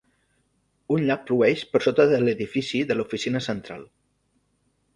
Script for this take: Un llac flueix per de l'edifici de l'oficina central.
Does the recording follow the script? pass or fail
fail